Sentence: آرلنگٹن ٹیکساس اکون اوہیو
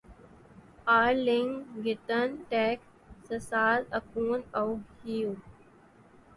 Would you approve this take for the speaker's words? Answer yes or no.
yes